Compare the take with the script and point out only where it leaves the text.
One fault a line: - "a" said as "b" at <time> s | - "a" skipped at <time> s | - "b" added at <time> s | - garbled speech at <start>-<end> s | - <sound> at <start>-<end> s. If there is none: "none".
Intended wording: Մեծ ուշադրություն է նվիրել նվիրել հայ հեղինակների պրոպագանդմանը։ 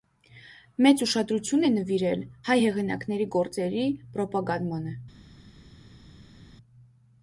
- "նվիրել" skipped at 2.2 s
- "գործերի" added at 3.4 s